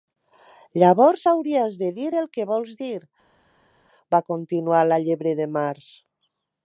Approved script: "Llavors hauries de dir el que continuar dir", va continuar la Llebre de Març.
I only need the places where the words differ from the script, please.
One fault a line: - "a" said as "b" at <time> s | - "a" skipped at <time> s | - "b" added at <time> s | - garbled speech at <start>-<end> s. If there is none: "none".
- "continuar" said as "vols" at 2.5 s